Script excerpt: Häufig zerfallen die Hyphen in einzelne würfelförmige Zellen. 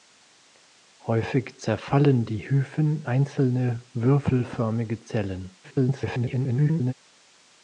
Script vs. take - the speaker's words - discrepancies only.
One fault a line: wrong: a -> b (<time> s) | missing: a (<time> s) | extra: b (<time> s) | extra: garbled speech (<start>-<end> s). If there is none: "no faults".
missing: in (3.0 s)
extra: garbled speech (5.6-6.9 s)